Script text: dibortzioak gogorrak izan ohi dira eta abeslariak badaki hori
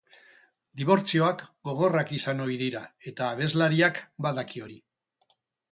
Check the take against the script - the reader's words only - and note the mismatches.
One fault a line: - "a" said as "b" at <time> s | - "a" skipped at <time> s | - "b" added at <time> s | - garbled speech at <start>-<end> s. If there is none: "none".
none